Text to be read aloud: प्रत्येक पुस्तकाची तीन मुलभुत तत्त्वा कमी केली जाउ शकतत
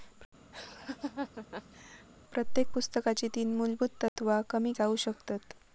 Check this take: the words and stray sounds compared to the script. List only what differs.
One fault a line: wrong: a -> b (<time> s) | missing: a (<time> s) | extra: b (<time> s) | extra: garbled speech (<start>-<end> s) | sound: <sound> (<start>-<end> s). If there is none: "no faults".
sound: laugh (0.5-2.1 s)
sound: dropout (4.1-4.2 s)
missing: केली (4.7 s)